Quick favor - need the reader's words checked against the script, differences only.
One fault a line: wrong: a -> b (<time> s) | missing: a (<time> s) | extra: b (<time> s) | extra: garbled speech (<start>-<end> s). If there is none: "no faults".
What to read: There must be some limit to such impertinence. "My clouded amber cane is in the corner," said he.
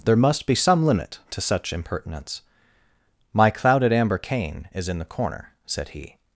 no faults